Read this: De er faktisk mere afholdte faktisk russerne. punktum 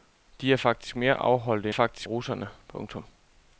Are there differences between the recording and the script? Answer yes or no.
no